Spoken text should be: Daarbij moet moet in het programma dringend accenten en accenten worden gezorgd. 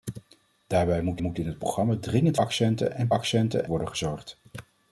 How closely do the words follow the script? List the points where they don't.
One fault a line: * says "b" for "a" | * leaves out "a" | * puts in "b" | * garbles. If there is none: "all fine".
all fine